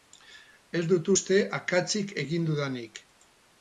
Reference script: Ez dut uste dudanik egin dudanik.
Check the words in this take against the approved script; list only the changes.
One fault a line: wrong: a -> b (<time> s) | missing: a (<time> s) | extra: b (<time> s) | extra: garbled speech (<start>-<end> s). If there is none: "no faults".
wrong: dudanik -> akatsik (1.6 s)